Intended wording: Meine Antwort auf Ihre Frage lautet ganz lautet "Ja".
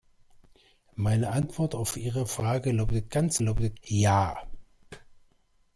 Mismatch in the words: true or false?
false